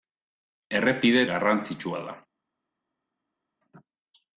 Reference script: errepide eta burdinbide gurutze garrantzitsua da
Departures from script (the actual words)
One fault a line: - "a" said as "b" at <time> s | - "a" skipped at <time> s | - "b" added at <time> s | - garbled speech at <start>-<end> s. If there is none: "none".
- "eta burdinbide gurutze" skipped at 1.2 s